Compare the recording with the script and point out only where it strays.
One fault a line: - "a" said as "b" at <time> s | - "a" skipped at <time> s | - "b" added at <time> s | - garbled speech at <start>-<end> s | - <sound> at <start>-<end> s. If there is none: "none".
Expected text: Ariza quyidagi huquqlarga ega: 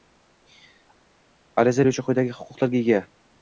- "beruvchi" added at 1.8 s